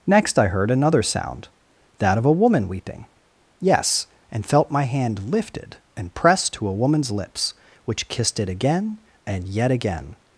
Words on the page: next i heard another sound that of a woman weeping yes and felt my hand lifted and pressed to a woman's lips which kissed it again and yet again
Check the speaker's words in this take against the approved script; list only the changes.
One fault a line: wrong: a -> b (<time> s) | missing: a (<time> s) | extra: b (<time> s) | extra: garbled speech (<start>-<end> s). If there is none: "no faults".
no faults